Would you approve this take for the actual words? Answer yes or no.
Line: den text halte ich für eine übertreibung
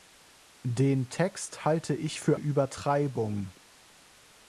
no